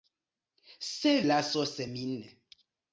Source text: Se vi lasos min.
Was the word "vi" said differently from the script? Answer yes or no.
yes